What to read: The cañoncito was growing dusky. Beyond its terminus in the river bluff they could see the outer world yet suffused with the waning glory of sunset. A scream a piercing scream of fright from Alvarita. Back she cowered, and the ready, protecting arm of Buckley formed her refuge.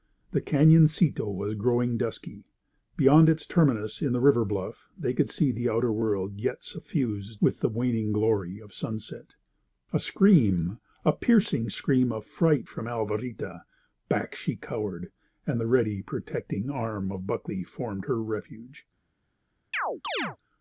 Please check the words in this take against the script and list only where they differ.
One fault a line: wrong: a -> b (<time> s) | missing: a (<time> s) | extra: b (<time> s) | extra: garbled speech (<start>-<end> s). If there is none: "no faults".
no faults